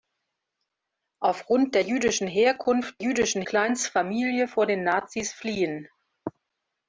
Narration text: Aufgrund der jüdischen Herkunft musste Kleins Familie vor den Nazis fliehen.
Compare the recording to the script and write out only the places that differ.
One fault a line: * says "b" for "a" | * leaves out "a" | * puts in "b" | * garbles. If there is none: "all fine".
* says "jüdischen" for "musste"